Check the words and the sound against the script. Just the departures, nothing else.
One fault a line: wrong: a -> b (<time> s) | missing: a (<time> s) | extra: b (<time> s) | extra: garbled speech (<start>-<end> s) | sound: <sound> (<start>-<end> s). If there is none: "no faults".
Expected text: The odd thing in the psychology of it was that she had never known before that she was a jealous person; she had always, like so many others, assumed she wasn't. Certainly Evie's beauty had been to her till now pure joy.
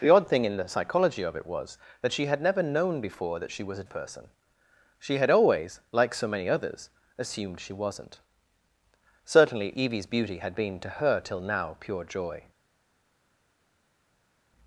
missing: jealous (3.8 s)